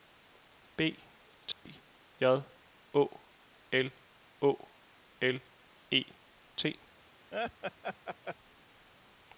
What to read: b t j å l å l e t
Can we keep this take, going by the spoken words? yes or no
yes